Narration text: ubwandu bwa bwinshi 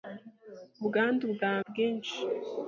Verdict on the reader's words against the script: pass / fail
pass